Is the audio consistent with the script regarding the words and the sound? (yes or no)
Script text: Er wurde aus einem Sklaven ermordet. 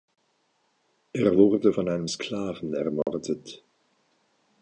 no